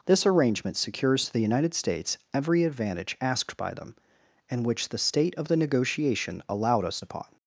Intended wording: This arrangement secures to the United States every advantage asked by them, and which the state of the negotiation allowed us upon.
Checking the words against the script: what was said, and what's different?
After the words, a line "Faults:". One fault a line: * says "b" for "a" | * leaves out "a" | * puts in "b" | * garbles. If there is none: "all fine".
This arrangement secures to the United States every advantage asked by them, and which the state of the negotiation allowed us upon.
Faults:
all fine